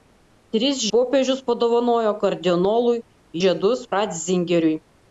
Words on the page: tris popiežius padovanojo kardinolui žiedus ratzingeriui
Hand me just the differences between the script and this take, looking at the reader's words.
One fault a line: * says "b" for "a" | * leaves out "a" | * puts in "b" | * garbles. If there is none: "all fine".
all fine